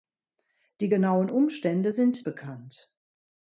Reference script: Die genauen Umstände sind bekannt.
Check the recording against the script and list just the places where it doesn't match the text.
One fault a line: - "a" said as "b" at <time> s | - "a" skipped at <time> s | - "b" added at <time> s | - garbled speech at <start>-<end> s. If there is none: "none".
none